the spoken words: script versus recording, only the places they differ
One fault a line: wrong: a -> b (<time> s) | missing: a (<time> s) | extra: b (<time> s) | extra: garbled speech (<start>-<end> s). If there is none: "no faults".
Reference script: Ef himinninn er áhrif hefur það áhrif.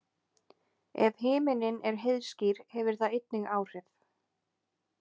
wrong: áhrif -> heiðskír (2.0 s)
extra: einnig (3.2 s)